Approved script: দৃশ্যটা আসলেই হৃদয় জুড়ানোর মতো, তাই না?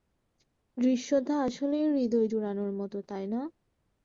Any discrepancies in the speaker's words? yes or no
no